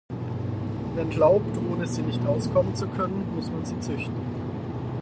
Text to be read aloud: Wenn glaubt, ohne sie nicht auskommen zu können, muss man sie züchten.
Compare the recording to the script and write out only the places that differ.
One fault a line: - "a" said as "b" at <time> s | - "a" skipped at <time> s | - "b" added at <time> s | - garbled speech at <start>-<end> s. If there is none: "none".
none